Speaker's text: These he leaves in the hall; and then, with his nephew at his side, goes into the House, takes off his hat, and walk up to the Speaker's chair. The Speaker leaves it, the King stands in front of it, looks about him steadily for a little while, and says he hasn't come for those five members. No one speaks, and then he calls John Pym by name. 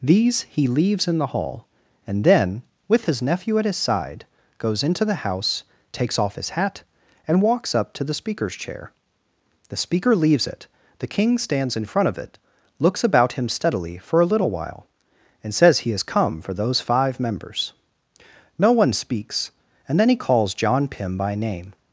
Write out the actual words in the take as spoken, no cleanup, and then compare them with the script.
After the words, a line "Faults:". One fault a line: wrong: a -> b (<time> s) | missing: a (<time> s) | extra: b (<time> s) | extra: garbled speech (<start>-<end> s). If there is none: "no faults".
These he leaves in the hall; and then, with his nephew at his side, goes into the House, takes off his hat, and walks up to the Speaker's chair. The Speaker leaves it, the King stands in front of it, looks about him steadily for a little while, and says he has come for those five members. No one speaks, and then he calls John Pym by name.
Faults:
wrong: walk -> walks (7.4 s)
wrong: hasn't -> has (15.9 s)